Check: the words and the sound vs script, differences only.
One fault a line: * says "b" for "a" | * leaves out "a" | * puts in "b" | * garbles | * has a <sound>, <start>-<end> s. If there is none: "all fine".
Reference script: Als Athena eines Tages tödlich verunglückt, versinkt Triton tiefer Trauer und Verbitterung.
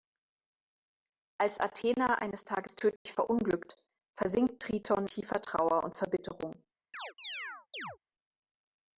* has a dropout, 3.0-3.1 s
* has a chirp, 6.9-8.0 s